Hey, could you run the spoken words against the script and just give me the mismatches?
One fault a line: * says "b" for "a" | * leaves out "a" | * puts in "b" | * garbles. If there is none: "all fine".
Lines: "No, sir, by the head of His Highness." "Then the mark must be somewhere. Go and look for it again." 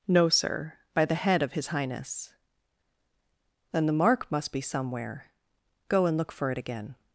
all fine